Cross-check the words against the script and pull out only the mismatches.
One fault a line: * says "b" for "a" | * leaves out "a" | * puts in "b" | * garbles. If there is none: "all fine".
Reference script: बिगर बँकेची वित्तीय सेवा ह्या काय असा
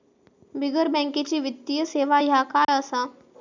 all fine